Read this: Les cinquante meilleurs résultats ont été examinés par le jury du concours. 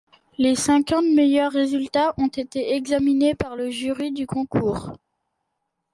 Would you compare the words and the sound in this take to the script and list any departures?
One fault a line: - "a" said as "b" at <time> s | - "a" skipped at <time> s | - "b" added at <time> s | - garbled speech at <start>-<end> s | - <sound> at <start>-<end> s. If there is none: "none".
none